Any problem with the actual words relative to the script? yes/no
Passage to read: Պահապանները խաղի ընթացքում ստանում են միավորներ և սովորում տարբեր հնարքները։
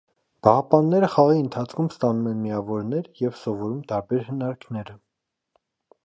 no